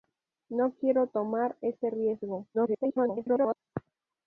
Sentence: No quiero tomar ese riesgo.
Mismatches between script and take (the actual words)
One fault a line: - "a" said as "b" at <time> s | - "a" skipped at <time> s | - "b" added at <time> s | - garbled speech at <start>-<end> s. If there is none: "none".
- garbled speech at 2.5-3.6 s